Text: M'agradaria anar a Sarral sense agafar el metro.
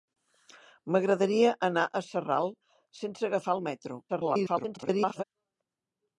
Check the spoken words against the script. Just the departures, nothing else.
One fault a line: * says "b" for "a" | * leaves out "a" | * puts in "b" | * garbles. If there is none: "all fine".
* garbles